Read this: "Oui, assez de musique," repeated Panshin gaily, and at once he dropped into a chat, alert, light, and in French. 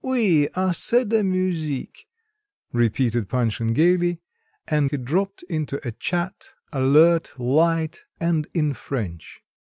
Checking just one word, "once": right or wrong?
wrong